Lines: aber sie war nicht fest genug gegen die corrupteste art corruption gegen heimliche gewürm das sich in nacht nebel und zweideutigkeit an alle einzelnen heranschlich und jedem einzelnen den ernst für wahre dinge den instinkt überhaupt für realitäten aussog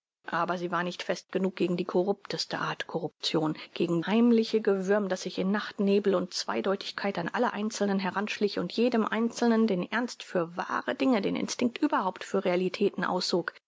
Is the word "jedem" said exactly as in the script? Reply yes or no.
yes